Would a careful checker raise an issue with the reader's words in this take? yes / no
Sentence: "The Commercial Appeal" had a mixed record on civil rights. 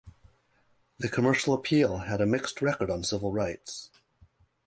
no